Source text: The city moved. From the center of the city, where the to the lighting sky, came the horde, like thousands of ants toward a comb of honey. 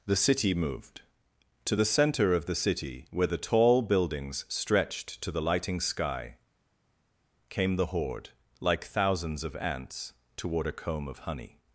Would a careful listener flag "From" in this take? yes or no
yes